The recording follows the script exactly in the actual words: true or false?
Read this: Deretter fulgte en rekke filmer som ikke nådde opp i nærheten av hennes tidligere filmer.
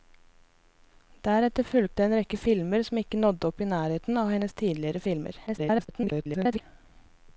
false